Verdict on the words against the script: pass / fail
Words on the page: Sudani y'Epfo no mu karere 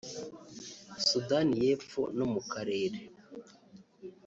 pass